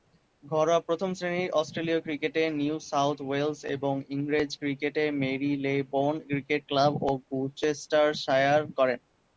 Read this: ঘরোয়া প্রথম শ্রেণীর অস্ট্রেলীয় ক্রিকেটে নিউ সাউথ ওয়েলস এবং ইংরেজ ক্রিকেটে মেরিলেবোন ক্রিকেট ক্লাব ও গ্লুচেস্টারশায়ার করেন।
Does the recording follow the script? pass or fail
pass